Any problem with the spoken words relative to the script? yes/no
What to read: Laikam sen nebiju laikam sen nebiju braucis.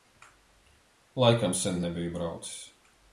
yes